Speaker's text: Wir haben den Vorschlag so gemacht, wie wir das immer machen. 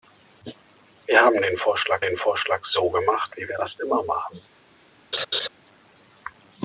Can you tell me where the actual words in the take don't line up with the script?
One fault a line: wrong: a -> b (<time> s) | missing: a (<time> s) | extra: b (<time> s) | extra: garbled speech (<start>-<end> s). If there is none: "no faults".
extra: den Vorschlag (2.0 s)